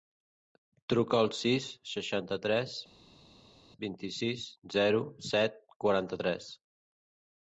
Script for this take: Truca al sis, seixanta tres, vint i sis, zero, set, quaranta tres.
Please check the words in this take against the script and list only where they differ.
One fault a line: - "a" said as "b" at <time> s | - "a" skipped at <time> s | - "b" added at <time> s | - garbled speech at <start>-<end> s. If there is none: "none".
none